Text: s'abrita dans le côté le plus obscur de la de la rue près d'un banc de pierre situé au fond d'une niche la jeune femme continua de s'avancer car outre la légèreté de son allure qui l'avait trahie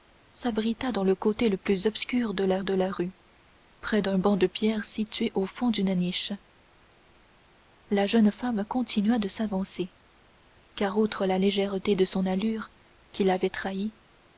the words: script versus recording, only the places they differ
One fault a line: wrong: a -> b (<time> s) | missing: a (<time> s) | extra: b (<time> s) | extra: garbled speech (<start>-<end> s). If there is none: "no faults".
no faults